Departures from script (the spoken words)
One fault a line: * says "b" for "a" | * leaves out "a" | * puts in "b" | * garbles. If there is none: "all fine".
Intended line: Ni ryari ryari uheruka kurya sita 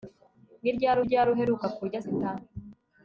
all fine